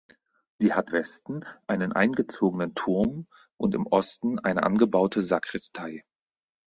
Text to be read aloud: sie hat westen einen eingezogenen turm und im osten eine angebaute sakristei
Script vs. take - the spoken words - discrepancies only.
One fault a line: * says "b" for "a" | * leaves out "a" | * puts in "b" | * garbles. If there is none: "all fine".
all fine